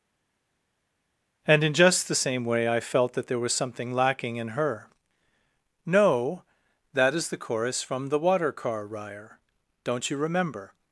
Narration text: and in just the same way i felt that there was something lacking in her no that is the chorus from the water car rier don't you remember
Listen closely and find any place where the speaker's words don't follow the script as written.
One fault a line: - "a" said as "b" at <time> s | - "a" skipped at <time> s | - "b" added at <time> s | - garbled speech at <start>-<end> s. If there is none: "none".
none